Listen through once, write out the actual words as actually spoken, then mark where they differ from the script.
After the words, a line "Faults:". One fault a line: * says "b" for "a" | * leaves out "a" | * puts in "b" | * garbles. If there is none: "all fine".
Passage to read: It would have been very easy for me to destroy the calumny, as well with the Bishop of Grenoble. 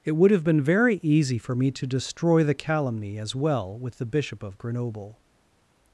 It would have been very easy for me to destroy the calumny, as well with the Bishop of Grenoble.
Faults:
all fine